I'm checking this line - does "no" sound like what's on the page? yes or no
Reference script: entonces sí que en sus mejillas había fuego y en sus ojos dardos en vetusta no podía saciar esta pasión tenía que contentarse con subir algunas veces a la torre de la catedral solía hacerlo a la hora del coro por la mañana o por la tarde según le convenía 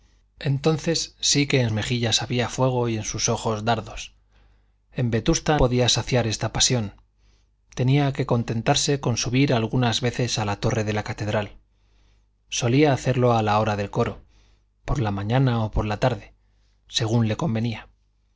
no